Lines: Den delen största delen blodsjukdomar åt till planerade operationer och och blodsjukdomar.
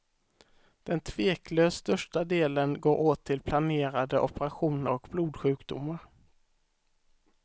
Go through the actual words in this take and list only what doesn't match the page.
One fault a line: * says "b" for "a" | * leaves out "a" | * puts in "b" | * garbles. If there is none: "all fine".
* says "tveklöst" for "delen"
* says "går" for "blodsjukdomar"
* leaves out "och"